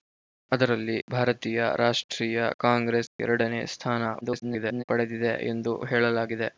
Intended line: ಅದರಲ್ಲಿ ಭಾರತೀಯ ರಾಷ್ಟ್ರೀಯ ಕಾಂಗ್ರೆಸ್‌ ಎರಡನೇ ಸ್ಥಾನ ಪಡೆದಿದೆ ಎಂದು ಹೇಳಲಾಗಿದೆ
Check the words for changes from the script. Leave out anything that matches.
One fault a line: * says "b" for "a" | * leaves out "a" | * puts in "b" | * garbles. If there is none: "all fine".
* garbles